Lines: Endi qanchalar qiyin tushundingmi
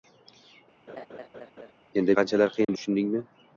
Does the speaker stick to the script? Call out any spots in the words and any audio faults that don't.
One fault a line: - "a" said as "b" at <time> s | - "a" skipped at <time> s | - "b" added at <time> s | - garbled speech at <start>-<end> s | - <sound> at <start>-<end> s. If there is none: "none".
- laugh at 0.9-1.7 s
- dropout at 2.6-2.7 s